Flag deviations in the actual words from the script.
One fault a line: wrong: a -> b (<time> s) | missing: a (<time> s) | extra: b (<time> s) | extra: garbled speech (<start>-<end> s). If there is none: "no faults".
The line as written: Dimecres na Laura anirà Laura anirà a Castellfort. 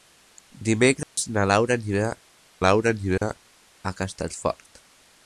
no faults